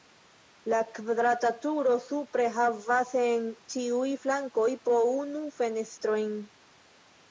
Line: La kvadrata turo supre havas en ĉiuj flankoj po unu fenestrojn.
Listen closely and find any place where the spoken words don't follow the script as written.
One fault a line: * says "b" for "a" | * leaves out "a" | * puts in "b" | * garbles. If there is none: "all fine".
all fine